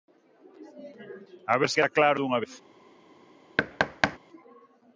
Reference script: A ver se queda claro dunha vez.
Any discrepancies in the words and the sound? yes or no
yes